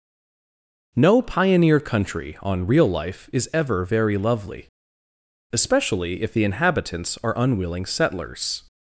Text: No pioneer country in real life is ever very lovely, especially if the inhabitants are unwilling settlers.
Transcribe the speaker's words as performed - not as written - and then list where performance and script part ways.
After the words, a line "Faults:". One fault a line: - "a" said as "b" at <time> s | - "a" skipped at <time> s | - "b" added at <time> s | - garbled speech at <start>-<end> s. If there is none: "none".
No pioneer country on real life is ever very lovely, especially if the inhabitants are unwilling settlers.
Faults:
- "in" said as "on" at 2.4 s